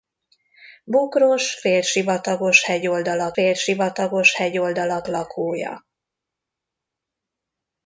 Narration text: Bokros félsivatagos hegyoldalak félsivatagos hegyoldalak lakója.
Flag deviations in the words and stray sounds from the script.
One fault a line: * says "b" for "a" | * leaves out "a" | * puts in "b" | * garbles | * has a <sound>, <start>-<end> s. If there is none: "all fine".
all fine